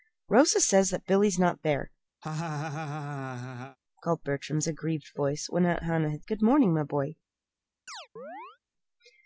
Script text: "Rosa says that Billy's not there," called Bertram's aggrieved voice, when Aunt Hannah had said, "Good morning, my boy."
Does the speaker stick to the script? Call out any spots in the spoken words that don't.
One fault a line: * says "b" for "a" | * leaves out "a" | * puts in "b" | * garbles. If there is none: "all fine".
* leaves out "said"